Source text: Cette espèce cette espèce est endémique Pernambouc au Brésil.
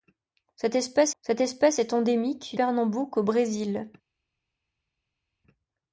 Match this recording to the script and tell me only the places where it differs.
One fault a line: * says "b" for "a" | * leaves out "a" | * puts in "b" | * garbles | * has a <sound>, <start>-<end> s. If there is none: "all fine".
all fine